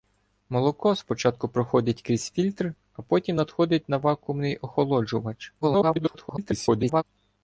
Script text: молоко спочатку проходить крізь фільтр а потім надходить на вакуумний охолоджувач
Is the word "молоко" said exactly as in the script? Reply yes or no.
yes